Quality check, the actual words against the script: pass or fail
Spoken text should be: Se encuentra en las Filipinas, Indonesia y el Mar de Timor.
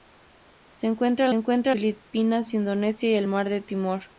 fail